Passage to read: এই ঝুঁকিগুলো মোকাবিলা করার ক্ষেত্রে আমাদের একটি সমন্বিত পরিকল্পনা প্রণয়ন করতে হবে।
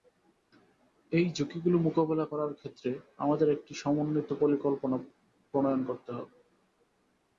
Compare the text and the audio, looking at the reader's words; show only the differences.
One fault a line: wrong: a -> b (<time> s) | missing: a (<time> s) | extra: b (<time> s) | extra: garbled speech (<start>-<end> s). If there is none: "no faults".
no faults